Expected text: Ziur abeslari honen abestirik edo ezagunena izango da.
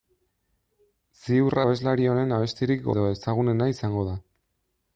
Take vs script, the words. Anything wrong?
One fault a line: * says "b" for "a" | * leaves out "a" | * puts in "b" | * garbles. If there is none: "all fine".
all fine